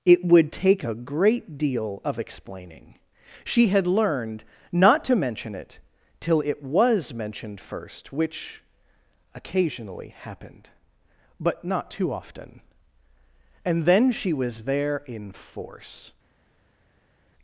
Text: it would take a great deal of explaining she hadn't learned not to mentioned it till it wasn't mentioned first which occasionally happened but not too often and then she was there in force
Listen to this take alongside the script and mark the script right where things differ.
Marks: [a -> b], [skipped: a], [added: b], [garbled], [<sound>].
it would take a great deal of explaining she [hadn't -> had] learned not to [mentioned -> mention] it till it [wasn't -> was] mentioned first which occasionally happened but not too often and then she was there in force